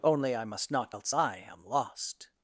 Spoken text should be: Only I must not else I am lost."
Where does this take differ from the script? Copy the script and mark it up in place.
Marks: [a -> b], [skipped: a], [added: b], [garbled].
Only I must not else I am lost."